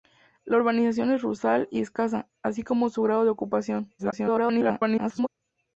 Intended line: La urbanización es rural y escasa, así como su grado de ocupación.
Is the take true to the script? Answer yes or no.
no